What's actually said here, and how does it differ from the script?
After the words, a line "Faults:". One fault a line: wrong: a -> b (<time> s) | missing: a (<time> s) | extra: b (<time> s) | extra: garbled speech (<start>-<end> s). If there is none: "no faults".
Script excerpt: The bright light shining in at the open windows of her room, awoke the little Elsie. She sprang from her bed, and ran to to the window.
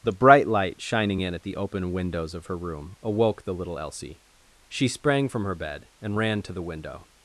The bright light shining in at the open windows of her room, awoke the little Elsie. She sprang from her bed, and ran to the window.
Faults:
missing: to (6.5 s)